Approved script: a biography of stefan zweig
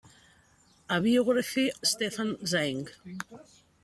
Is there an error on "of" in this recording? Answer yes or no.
yes